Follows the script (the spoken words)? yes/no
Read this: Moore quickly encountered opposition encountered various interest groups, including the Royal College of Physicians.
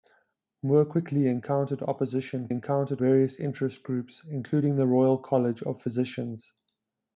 yes